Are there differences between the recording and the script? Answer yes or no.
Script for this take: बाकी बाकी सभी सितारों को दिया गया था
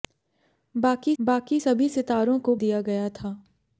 no